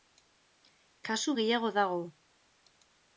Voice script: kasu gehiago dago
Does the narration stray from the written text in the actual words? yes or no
no